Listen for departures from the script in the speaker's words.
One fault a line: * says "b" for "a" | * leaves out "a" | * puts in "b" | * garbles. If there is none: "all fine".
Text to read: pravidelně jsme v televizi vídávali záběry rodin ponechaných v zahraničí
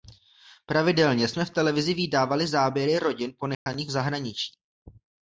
all fine